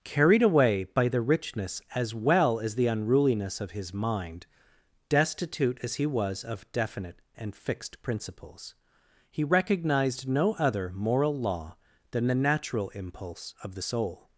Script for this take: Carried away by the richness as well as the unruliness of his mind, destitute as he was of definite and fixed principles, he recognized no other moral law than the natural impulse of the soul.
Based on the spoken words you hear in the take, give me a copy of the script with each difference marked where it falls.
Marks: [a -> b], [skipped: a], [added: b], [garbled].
Carried away by the richness as well as the unruliness of his mind, destitute as he was of definite and fixed principles, he recognized no other moral law than the natural impulse of the soul.